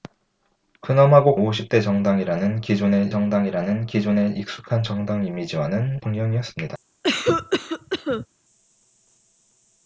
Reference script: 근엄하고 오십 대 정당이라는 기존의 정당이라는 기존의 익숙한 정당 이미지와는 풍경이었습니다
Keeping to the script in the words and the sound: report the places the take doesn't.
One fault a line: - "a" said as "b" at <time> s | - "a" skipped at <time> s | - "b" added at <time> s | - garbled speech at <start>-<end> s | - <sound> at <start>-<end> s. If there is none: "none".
- cough at 7.0-8.3 s